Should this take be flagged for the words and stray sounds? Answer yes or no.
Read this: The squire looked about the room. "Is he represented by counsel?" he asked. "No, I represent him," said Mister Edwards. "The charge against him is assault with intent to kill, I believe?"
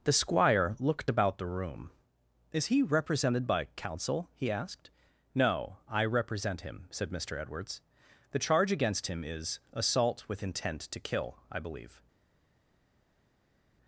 no